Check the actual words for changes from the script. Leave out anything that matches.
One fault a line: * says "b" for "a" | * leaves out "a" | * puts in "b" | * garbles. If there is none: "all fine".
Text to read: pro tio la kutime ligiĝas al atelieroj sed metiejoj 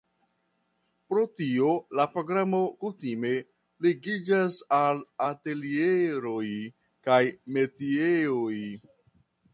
* puts in "programo"
* says "kaj" for "sed"